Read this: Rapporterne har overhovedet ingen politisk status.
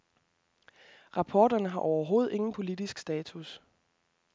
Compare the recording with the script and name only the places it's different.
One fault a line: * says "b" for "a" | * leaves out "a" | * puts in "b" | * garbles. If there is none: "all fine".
all fine